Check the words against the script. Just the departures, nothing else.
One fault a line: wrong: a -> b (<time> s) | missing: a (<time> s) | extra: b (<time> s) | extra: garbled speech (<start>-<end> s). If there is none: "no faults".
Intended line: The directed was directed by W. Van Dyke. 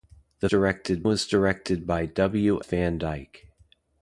no faults